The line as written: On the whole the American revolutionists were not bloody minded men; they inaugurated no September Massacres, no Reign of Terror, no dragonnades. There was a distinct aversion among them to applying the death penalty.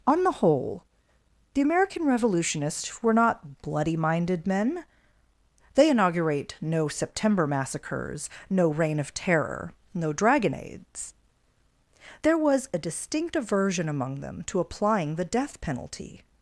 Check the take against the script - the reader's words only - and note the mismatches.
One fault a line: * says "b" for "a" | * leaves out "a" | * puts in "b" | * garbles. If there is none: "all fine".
* says "inaugurate" for "inaugurated"